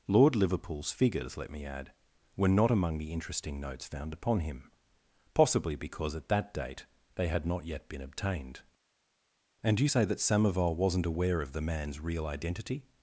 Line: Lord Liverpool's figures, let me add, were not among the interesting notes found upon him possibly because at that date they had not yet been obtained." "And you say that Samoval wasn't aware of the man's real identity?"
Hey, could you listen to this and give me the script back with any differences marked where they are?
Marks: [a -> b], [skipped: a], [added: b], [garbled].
Lord Liverpool's figures, let me add, were not among the interesting notes found upon him possibly because at that date they had not yet been obtained." "And you say that Samoval wasn't aware of the man's real identity?"